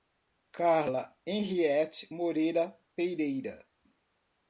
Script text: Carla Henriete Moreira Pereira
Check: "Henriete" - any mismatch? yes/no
no